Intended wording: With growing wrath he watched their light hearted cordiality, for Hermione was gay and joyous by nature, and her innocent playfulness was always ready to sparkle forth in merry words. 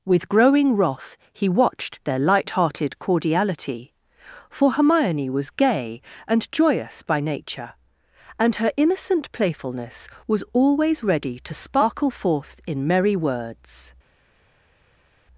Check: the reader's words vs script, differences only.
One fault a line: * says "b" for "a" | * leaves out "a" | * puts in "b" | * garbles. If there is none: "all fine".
all fine